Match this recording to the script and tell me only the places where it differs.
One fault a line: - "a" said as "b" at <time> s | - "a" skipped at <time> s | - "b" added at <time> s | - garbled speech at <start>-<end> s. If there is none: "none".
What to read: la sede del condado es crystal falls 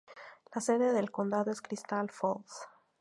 none